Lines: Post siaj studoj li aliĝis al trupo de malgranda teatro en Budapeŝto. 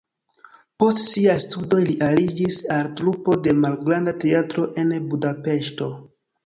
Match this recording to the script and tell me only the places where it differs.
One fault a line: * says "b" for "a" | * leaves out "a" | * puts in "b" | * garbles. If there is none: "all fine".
all fine